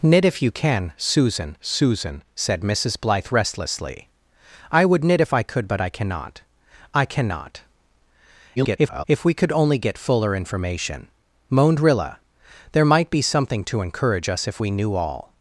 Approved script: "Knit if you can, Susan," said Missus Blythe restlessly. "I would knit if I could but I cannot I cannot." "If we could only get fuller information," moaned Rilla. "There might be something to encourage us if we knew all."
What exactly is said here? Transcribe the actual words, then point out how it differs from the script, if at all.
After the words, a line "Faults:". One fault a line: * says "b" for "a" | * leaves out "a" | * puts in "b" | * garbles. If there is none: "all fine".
"Knit if you can, Susan Susan," said Missus Blythe restlessly. "I would knit if I could but I cannot I cannot." [garbled] "If we could only get fuller information," moaned Rilla. "There might be something to encourage us if we knew all."
Faults:
* puts in "Susan"
* garbles